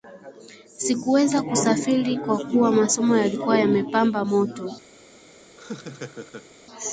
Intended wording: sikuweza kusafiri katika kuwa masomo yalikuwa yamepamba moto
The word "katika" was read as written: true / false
false